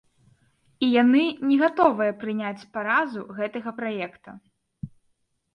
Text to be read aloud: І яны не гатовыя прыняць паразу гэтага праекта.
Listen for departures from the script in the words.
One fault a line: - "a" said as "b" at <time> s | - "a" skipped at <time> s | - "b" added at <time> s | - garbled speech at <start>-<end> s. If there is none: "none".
none